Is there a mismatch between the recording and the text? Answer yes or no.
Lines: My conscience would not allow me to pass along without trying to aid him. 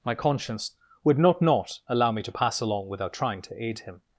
yes